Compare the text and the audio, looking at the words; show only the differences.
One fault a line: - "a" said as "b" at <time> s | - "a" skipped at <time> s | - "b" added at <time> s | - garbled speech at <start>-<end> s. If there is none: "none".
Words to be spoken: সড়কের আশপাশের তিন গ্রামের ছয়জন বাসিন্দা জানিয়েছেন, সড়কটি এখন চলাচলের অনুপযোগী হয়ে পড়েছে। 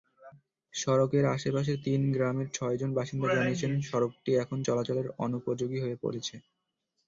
none